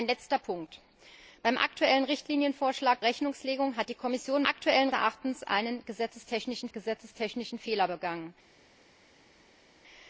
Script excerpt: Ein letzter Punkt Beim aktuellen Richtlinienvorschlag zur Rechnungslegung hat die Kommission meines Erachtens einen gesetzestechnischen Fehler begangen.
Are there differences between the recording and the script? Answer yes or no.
yes